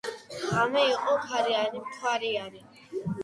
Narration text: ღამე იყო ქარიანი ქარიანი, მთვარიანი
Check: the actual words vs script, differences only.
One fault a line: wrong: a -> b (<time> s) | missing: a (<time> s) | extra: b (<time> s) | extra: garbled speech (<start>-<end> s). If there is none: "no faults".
missing: ქარიანი (1.8 s)